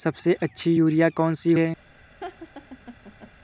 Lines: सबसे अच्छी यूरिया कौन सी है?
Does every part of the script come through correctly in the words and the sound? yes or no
no